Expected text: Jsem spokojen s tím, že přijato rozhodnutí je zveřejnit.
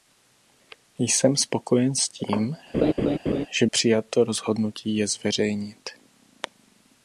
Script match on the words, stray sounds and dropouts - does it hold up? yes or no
no